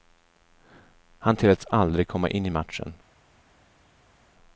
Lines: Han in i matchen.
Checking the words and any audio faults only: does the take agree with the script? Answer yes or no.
no